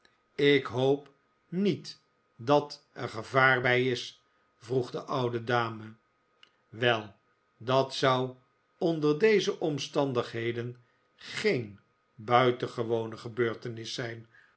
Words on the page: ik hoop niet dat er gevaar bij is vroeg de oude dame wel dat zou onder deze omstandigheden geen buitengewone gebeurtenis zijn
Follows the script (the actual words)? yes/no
yes